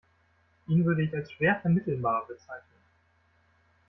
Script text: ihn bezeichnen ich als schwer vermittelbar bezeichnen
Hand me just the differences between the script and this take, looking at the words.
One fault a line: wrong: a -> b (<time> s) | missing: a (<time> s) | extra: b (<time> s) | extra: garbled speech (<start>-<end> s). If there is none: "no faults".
wrong: bezeichnen -> würde (0.8 s)